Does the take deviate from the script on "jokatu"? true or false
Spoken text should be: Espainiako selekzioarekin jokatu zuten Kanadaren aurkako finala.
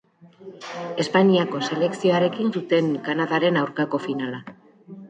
true